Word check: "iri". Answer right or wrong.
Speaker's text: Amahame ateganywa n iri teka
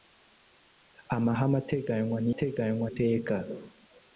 wrong